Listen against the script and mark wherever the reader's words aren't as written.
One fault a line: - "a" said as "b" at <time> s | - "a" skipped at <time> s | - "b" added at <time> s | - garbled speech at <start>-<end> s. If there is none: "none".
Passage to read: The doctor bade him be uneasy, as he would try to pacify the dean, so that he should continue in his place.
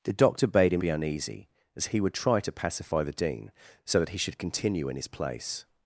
none